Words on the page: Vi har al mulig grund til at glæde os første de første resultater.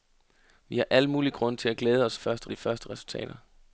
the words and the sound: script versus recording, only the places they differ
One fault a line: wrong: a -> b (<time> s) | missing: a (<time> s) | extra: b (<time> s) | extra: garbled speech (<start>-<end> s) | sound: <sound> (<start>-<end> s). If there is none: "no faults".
no faults